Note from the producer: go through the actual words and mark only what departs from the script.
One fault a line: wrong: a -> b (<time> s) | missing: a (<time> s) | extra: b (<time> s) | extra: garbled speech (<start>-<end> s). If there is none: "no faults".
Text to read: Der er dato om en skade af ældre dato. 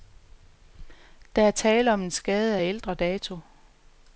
wrong: dato -> tale (1.5 s)